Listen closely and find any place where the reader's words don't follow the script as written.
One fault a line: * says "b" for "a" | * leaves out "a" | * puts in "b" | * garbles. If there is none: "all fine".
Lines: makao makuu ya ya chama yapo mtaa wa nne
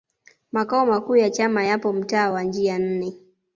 * leaves out "ya"
* puts in "njia"